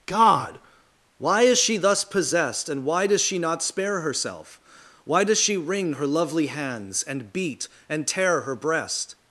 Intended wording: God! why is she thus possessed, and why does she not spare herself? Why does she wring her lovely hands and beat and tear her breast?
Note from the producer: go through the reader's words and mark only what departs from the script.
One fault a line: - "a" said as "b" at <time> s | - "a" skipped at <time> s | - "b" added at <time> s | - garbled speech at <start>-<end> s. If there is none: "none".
none